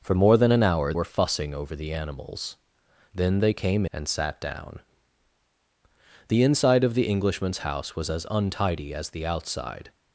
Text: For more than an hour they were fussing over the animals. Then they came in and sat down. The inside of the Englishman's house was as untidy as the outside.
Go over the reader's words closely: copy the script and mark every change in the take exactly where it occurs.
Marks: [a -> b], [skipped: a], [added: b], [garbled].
For more than an hour [skipped: they] were fussing over the animals. Then they came [skipped: in] and sat down. The inside of the Englishman's house was as untidy as the outside.